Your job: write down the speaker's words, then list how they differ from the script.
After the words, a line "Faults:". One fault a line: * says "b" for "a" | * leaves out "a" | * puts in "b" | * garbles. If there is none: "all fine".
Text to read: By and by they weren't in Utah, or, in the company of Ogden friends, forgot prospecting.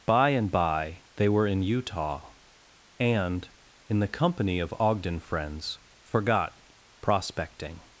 By and by they were in Utah, and, in the company of Ogden friends, forgot prospecting.
Faults:
* says "were" for "weren't"
* says "and" for "or"